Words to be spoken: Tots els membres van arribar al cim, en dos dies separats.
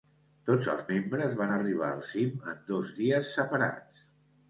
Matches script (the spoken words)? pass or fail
pass